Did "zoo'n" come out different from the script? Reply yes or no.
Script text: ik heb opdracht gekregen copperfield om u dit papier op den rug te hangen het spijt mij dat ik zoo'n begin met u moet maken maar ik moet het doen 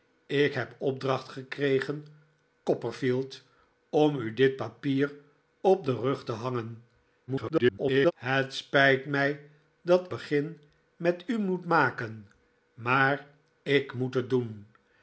yes